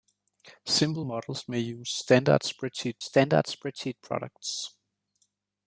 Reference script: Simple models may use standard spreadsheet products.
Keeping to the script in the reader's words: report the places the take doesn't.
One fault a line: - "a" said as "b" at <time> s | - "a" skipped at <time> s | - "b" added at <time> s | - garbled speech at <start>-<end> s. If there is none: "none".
- "standard spreadsheet" added at 3.0 s